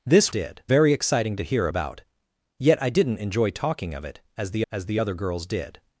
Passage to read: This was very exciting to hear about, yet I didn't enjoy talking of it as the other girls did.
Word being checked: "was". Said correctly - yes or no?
no